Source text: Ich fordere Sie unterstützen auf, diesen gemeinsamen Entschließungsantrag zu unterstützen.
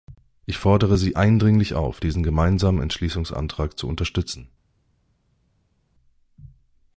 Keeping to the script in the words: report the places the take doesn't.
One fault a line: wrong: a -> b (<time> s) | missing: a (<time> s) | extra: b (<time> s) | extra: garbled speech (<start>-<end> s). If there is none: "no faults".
wrong: unterstützen -> eindringlich (1.1 s)